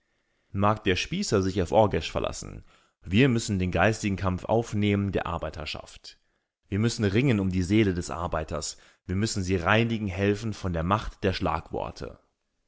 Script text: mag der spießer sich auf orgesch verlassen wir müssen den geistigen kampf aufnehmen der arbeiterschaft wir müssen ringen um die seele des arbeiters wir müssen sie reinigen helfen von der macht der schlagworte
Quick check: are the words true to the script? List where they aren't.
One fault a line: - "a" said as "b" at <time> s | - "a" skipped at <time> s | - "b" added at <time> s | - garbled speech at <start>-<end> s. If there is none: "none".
none